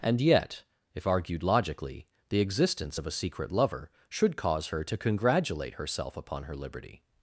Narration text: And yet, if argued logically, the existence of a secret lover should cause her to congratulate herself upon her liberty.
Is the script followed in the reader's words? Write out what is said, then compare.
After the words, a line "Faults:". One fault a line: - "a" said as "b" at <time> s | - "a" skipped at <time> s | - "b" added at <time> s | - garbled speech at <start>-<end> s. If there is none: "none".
And yet, if argued logically, the existence of a secret lover should cause her to congratulate herself upon her liberty.
Faults:
none